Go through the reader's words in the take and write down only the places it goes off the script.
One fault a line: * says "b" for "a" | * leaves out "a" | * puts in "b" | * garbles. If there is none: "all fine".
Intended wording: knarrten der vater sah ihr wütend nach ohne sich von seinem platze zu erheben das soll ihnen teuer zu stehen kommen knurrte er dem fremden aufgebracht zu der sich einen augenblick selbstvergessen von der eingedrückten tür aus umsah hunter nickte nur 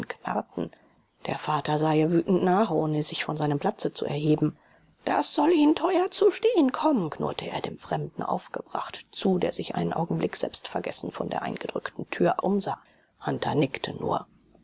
* leaves out "aus"